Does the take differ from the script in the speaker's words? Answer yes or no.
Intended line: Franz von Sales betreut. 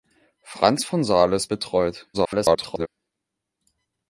yes